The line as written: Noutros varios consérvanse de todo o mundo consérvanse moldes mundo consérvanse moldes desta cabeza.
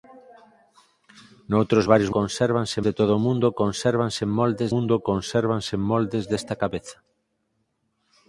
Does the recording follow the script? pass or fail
pass